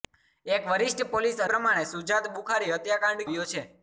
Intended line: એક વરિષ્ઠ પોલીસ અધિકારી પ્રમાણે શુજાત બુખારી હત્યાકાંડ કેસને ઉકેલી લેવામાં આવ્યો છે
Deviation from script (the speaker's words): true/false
true